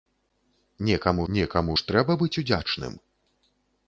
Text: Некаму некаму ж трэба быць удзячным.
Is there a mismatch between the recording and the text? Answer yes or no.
no